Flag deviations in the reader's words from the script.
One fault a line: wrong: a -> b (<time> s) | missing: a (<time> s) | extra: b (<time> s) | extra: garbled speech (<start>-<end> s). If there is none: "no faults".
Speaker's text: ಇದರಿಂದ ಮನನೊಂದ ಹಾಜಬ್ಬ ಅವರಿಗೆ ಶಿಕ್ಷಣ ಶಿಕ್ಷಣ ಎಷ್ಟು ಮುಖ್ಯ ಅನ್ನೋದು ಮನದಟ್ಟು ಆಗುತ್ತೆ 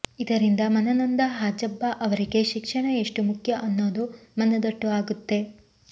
missing: ಶಿಕ್ಷಣ (2.9 s)